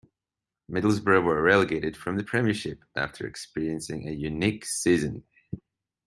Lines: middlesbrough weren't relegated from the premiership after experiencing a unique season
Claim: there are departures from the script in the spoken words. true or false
true